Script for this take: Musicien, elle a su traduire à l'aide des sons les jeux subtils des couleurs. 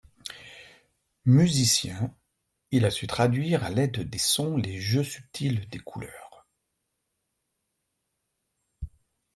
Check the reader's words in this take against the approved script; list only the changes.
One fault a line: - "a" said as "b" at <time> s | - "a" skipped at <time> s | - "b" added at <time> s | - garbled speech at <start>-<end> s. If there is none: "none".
- "elle" said as "il" at 2.7 s